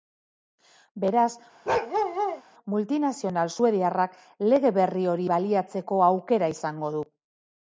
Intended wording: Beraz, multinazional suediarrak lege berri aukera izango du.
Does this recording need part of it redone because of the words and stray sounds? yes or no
yes